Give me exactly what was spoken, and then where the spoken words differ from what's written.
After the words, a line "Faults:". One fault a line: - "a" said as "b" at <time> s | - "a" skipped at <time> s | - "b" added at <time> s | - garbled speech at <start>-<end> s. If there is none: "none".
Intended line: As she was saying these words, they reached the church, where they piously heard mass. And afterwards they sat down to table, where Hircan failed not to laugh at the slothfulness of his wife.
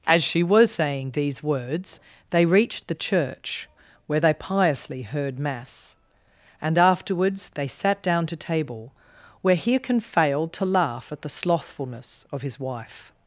As she was saying these words, they reached the church, where they piously heard mass. And afterwards they sat down to table, where Hircan failed to laugh at the slothfulness of his wife.
Faults:
- "not" skipped at 10.5 s